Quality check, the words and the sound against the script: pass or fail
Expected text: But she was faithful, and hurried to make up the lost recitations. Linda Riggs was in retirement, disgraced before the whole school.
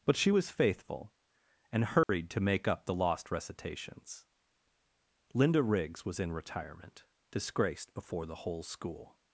fail